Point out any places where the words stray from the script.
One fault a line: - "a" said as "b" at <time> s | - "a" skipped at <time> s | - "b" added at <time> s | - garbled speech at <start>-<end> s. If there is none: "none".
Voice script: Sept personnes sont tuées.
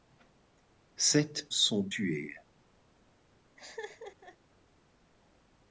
- "personnes" skipped at 1.5 s